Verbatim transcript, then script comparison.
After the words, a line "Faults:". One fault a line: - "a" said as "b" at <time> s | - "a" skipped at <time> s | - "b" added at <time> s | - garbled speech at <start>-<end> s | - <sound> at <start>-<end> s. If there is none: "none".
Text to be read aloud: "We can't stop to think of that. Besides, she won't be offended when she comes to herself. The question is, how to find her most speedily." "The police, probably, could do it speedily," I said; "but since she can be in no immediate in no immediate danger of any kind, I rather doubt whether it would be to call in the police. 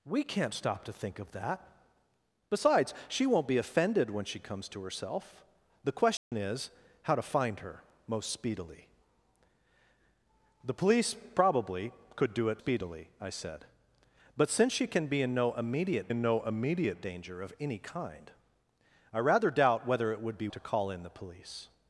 "We can't stop to think of that. Besides, she won't be offended when she comes to herself. The question is, how to find her most speedily." "The police, probably, could do it speedily," I said; "but since she can be in no immediate in no immediate danger of any kind, I rather doubt whether it would be to call in the police.
Faults:
- dropout at 6.2-6.3 s